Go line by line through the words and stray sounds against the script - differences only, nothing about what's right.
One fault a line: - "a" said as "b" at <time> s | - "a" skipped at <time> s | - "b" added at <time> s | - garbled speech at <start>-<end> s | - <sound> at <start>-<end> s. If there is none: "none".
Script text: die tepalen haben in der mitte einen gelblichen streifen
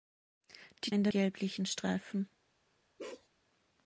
- "tepalen haben" skipped at 0.9 s
- "mitte einen" skipped at 1.1 s
- bark at 3.0-3.3 s